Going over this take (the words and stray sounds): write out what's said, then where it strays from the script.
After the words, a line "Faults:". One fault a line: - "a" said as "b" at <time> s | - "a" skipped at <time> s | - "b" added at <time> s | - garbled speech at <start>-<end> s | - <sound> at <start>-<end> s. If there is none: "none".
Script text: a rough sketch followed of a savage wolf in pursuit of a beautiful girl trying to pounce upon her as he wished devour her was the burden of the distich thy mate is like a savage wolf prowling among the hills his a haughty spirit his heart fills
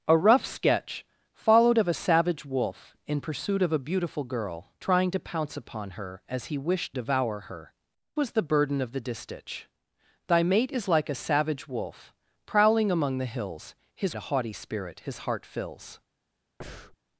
a rough sketch followed of a savage wolf in pursuit of a beautiful girl trying to pounce upon her as he wished devour her was the burden of the distich thy mate is like a savage wolf prowling among the hills his a haughty spirit his heart fills
Faults:
- breath at 16.6-17.0 s